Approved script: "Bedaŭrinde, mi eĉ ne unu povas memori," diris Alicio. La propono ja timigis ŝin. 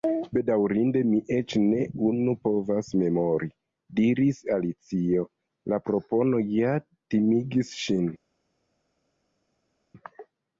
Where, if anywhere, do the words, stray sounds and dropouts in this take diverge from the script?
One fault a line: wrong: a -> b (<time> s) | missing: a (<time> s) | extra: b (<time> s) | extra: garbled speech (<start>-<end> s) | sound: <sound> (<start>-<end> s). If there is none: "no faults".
no faults